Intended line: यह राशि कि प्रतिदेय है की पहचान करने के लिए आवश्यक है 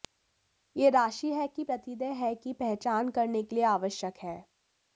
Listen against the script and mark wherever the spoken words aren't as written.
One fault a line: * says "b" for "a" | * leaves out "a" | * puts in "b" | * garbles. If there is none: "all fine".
* puts in "है"